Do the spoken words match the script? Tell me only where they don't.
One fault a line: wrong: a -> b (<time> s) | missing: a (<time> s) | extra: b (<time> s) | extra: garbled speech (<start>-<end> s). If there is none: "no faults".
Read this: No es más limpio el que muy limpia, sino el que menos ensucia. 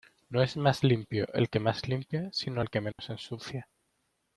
wrong: muy -> más (1.6 s)